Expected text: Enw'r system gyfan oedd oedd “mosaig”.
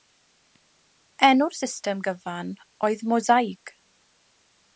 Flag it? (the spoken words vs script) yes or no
yes